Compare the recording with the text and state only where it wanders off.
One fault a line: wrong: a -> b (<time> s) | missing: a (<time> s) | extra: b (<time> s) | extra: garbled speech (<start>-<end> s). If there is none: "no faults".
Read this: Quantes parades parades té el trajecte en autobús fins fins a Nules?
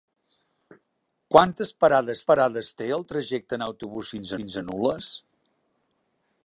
no faults